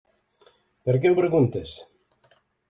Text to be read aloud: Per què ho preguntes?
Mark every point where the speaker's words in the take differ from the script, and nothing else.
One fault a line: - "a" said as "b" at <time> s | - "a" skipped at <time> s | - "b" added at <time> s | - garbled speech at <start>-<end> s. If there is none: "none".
none